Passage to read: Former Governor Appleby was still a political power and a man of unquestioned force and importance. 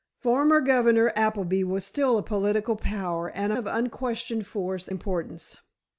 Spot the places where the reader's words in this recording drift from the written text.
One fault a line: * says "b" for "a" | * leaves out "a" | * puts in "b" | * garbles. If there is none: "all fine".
* leaves out "man"
* leaves out "and"